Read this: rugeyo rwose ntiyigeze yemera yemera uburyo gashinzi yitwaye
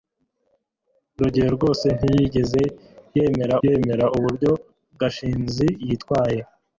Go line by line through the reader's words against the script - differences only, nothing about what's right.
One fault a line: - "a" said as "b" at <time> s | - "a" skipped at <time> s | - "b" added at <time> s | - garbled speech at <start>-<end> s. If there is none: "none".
none